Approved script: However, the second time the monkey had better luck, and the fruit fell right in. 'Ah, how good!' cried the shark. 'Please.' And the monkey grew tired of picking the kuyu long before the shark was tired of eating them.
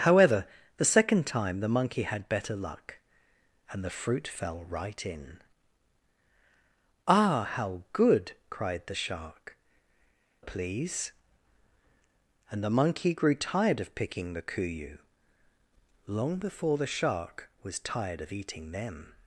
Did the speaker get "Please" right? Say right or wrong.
right